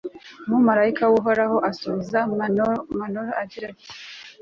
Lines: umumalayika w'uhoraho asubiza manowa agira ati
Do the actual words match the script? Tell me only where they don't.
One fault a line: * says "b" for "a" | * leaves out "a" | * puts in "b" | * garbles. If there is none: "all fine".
all fine